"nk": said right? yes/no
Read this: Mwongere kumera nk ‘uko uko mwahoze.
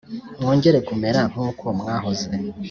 yes